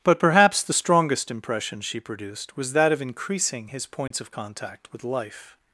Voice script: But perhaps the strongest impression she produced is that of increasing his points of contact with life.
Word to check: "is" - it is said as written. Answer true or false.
false